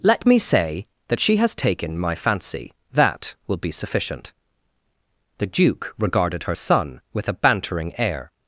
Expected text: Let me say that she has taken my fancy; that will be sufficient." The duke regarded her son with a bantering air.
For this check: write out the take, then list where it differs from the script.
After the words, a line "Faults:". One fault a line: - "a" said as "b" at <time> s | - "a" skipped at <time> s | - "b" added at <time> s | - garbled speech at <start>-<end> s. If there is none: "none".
Let me say that she has taken my fancy; that will be sufficient." The duke regarded her son with a bantering air.
Faults:
none